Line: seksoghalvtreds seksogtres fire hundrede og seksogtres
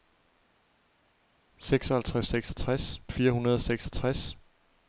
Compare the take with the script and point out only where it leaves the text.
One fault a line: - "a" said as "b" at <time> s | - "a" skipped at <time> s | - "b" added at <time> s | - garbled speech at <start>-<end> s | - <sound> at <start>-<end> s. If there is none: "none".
none